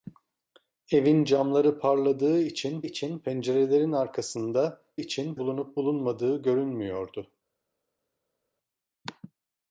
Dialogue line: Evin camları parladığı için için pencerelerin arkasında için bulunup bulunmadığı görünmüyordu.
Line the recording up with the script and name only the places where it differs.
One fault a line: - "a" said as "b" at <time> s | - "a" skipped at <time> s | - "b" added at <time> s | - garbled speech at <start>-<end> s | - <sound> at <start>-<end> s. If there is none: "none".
none